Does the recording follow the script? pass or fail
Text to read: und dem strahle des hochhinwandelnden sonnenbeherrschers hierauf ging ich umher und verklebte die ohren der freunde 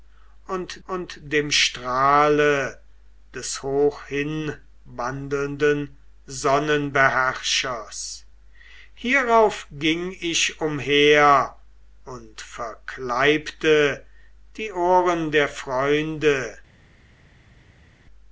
fail